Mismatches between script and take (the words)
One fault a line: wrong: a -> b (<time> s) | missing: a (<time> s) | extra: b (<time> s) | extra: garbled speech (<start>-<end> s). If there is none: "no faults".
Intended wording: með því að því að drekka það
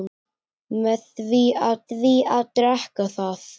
no faults